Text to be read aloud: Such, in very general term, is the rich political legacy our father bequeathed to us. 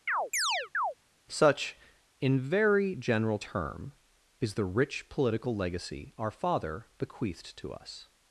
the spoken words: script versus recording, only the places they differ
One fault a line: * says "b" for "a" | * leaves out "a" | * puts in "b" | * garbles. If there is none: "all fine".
all fine